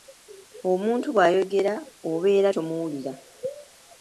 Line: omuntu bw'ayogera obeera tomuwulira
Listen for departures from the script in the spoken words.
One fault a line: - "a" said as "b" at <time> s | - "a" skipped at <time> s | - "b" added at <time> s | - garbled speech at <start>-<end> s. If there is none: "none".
none